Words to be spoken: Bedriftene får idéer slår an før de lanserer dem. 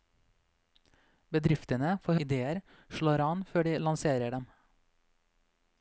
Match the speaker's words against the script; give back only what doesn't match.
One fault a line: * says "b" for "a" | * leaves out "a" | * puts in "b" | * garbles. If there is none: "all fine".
all fine